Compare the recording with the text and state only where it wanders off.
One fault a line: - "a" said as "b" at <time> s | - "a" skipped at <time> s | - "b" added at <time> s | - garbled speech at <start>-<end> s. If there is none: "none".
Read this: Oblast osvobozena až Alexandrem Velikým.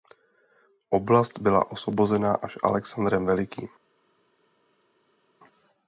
- "byla" added at 1.4 s